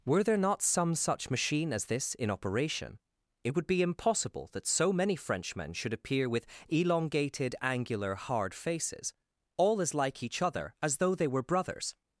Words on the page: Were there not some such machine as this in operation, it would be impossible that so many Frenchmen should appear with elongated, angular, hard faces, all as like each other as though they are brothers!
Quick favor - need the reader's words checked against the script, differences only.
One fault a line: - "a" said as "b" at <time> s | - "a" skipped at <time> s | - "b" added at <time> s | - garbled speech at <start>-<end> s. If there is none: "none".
- "are" said as "were" at 11.3 s